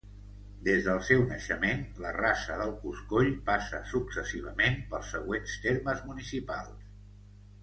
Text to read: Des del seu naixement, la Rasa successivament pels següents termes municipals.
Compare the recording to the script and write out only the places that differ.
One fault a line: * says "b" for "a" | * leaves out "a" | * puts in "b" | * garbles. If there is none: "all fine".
* puts in "del Coscoll passa"